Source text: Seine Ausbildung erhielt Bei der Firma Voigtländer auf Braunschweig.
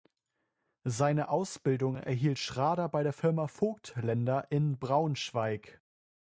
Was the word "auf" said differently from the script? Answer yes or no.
yes